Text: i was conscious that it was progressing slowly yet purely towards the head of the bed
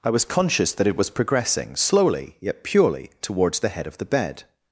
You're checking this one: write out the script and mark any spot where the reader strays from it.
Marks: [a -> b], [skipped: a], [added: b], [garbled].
i was conscious that it was progressing slowly yet purely towards the head of the bed